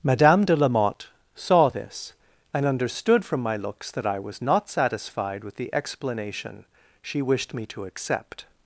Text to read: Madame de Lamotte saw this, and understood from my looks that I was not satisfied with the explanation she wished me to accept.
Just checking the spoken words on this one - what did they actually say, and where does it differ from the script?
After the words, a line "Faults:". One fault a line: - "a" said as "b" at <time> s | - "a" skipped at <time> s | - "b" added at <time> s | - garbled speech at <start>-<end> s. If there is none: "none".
Madame de Lamotte saw this, and understood from my looks that I was not satisfied with the explanation she wished me to accept.
Faults:
none